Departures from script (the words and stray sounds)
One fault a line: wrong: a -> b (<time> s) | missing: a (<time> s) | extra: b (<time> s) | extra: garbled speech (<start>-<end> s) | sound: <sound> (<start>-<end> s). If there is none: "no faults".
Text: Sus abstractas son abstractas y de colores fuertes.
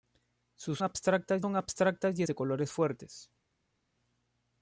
no faults